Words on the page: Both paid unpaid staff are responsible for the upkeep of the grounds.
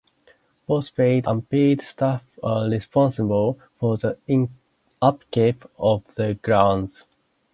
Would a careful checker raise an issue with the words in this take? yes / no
no